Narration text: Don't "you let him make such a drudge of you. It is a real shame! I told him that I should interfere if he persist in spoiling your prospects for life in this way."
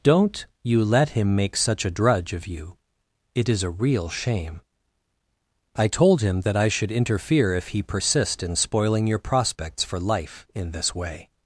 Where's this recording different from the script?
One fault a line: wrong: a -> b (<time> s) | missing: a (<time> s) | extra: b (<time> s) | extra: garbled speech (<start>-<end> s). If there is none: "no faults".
no faults